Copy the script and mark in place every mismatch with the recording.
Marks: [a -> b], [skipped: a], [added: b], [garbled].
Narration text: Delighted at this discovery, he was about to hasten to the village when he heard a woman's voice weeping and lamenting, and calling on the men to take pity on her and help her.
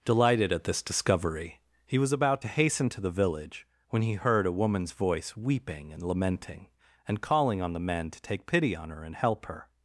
Delighted at this discovery, he was about to hasten to the village when he heard a woman's voice weeping and lamenting, and calling on the men to take pity on her and help her.